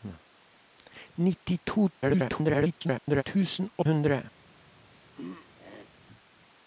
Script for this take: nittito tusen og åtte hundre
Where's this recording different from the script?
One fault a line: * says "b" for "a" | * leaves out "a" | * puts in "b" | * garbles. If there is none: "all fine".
* garbles
* leaves out "åtte"